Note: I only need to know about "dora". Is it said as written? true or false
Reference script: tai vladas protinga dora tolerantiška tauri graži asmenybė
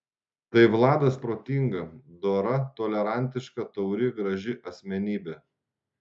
true